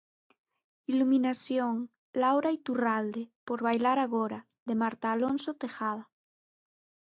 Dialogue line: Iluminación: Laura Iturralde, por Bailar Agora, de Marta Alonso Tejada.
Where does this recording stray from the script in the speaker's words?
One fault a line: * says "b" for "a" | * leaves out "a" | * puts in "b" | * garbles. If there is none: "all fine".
all fine